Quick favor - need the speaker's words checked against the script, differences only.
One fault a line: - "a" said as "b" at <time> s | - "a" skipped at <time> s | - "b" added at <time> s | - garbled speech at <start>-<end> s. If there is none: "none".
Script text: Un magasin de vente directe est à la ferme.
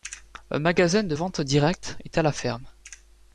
none